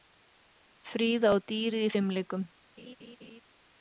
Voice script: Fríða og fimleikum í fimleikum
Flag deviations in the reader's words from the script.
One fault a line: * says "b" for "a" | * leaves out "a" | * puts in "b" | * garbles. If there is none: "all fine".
* says "dýrið" for "fimleikum"